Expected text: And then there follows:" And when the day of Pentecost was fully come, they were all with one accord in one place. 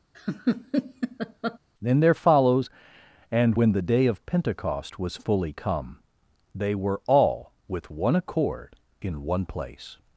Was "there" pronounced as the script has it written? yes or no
yes